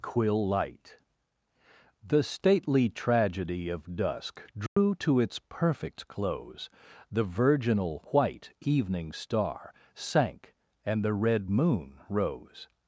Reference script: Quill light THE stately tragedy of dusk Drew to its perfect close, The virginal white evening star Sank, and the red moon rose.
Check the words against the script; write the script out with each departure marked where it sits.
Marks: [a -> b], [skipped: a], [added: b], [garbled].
Quill light THE stately tragedy of dusk Drew to its perfect close, The virginal white evening star Sank, and the red moon rose.